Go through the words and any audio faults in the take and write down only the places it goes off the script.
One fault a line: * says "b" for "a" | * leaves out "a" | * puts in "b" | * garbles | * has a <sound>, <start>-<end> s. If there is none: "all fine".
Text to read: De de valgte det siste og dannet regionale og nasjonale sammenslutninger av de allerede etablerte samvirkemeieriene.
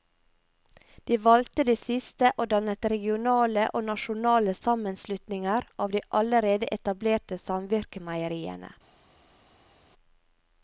* leaves out "de"